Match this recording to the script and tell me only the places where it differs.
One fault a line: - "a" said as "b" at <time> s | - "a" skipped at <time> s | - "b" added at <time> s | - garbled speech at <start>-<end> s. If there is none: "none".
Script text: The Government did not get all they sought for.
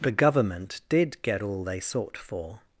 - "not" skipped at 1.2 s